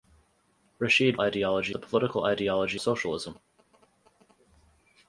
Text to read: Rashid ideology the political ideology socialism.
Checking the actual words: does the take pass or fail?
pass